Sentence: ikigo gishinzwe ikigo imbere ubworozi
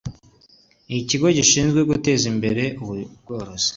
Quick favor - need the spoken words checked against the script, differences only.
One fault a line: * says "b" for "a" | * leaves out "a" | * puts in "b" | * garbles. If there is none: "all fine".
* says "guteza" for "ikigo"